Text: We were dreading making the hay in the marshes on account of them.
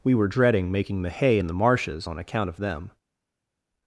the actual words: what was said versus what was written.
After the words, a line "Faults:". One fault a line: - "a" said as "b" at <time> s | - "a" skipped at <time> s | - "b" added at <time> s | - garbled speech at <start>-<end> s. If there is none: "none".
We were dreading making the hay in the marshes on account of them.
Faults:
none